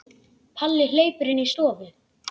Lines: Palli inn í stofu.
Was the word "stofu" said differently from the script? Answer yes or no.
no